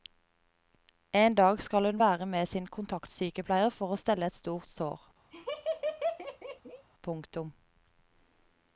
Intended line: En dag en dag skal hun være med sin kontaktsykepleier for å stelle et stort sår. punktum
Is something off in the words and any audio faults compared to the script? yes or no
yes